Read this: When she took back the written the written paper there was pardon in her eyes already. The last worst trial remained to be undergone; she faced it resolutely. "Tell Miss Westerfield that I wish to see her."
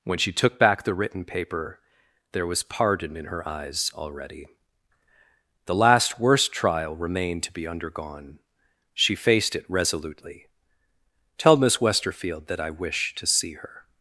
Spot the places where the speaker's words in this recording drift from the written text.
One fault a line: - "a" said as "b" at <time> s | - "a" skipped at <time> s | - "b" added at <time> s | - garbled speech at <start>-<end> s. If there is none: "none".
- "the written" skipped at 1.2 s